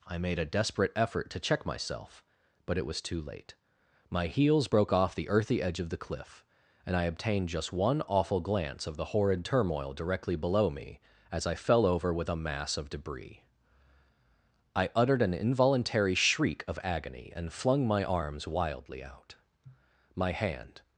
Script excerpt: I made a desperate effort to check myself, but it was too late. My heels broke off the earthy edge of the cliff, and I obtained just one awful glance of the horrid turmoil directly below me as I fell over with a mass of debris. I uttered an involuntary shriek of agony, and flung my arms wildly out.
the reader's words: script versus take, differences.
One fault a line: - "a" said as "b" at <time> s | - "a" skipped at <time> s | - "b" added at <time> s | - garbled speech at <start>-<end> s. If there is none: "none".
- "My hand" added at 20.1 s